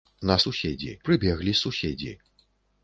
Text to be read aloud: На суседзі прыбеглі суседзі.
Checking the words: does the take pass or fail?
pass